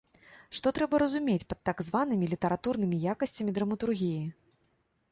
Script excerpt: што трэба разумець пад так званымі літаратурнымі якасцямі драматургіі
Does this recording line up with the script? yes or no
yes